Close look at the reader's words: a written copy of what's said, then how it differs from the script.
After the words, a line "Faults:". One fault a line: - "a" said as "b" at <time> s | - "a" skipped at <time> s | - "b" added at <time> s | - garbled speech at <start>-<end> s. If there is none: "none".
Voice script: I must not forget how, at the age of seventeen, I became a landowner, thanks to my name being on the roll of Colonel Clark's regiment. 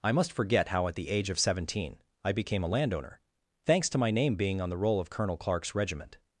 I must forget how, at the age of seventeen, I became a landowner, thanks to my name being on the roll of Colonel Clark's regiment.
Faults:
- "not" skipped at 0.3 s